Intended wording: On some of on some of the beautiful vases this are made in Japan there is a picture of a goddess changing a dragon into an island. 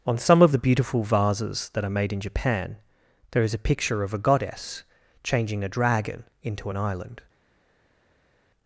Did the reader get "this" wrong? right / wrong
wrong